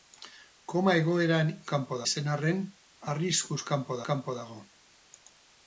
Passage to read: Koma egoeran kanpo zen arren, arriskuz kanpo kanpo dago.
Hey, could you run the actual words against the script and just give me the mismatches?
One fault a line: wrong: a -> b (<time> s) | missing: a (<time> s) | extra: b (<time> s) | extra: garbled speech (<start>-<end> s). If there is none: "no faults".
no faults